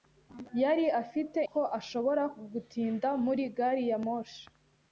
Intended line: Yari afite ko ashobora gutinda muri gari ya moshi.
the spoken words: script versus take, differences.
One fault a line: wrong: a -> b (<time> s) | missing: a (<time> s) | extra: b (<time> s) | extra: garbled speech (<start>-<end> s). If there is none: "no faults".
no faults